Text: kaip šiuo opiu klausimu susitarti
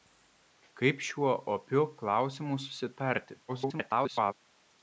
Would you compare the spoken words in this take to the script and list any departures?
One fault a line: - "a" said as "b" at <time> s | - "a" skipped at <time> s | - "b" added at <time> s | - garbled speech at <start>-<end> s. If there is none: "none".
- garbled speech at 3.5-4.3 s